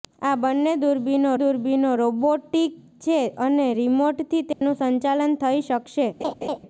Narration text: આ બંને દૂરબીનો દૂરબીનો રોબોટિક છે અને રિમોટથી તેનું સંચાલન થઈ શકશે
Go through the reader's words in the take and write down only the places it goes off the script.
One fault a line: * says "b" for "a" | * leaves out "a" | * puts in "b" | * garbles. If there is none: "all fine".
all fine